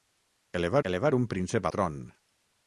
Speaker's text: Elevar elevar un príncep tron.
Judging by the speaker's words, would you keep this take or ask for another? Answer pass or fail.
pass